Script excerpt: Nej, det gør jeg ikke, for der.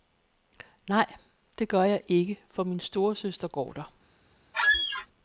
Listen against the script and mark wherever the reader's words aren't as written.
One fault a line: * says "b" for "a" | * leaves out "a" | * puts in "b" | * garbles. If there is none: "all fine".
* puts in "min storesøster går"